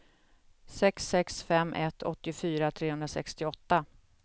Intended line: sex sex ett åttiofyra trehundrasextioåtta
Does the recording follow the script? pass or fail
fail